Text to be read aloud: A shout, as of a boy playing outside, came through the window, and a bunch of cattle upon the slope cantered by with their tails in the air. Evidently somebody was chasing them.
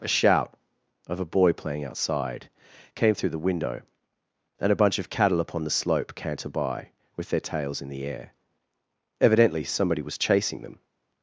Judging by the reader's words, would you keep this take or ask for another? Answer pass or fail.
fail